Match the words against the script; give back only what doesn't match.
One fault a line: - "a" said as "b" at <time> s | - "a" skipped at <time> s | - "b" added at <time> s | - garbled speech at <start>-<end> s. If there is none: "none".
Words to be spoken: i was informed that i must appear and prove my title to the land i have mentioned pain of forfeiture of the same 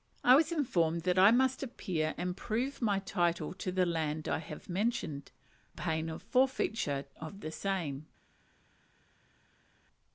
none